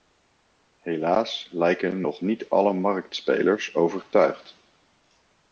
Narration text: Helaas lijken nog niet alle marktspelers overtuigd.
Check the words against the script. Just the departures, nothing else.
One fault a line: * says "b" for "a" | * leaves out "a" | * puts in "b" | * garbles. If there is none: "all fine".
all fine